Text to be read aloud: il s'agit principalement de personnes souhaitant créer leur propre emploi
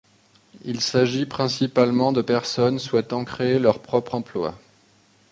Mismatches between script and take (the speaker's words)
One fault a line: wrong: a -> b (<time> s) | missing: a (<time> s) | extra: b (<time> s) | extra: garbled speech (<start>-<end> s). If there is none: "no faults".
no faults